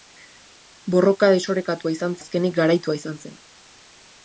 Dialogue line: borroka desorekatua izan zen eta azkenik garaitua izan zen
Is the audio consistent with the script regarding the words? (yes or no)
no